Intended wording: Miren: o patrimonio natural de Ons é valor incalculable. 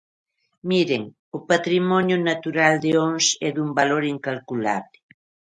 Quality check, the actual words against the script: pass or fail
fail